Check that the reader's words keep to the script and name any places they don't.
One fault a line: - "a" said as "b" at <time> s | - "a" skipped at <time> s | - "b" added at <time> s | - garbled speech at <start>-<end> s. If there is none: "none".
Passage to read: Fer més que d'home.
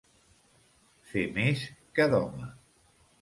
none